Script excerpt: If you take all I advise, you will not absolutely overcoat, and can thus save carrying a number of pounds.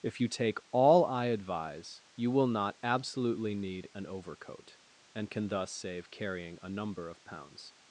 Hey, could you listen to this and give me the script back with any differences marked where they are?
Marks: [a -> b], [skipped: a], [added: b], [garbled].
If you take all I advise, you will not absolutely [added: need an] overcoat, and can thus save carrying a number of pounds.